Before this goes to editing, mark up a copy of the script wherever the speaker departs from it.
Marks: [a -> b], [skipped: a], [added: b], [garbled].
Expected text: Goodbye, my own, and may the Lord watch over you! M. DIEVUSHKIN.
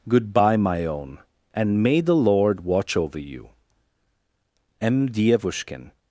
Goodbye, my own, and may the Lord watch over you! M. DIEVUSHKIN.